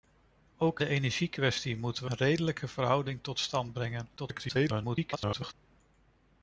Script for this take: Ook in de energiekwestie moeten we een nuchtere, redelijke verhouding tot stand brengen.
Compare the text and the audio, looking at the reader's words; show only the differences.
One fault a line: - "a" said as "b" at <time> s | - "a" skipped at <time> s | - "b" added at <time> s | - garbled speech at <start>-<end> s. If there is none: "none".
- "in" skipped at 0.8 s
- "een nuchtere" skipped at 2.1 s
- garbled speech at 4.2-5.5 s